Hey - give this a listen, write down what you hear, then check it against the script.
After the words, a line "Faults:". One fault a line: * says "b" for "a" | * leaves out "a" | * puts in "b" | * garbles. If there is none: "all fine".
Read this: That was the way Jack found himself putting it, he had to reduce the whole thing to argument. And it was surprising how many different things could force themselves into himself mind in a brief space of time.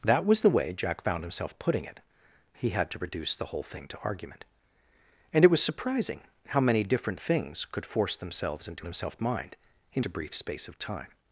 That was the way Jack found himself putting it, he had to reduce the whole thing to argument. And it was surprising how many different things could force themselves into himself mind in a brief space of time.
Faults:
all fine